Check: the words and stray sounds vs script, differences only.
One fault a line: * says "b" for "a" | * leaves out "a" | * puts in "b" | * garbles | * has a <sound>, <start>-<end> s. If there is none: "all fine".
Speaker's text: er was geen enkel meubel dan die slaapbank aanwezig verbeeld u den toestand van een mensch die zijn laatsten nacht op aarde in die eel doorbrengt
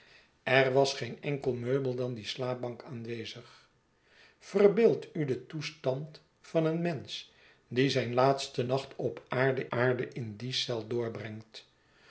* puts in "aarde"